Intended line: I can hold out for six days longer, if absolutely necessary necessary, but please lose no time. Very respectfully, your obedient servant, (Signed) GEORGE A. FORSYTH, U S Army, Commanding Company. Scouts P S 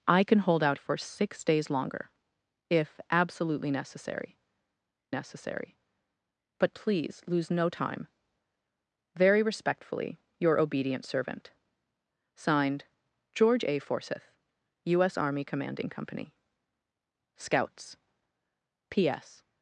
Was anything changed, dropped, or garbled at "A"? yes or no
no